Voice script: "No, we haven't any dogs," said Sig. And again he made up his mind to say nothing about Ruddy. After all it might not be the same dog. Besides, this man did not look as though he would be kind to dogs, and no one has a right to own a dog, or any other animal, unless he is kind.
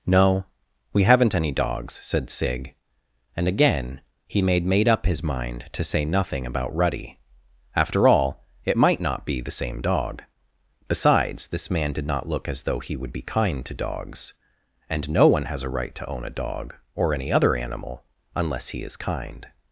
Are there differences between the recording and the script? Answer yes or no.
yes